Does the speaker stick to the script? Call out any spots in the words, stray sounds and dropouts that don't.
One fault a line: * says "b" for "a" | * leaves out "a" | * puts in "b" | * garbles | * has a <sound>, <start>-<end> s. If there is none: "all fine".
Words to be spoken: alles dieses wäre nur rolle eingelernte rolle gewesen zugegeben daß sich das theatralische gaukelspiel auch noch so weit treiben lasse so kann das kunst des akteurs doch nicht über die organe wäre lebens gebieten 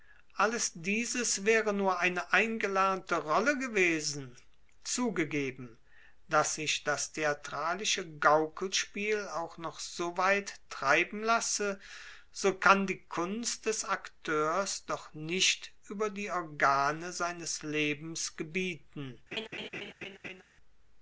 * says "eine" for "rolle"
* says "die" for "das"
* says "seines" for "wäre"
* has a laugh, 19.3-20.4 s